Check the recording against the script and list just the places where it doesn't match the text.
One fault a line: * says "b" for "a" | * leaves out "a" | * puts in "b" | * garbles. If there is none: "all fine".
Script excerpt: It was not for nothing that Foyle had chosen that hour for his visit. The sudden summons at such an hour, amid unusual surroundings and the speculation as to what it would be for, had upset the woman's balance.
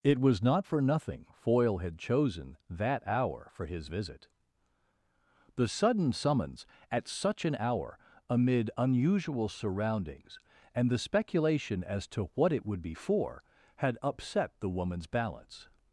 * leaves out "that"